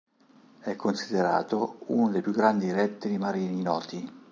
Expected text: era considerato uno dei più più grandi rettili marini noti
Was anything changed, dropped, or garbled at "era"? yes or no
yes